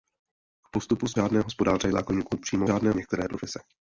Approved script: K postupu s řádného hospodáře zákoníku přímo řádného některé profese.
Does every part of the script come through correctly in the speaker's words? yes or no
yes